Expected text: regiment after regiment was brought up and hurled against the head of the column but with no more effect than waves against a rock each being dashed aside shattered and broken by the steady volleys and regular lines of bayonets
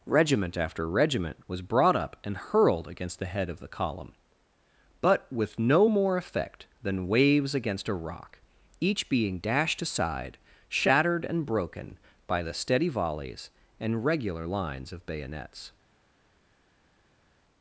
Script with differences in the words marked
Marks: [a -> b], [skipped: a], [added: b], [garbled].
regiment after regiment was brought up and hurled against the head of the column but with no more effect than waves against a rock each being dashed aside shattered and broken by the steady volleys and regular lines of bayonets